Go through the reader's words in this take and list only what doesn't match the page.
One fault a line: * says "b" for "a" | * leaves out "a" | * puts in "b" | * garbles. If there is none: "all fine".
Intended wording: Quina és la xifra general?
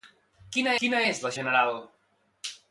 * puts in "quina"
* leaves out "xifra"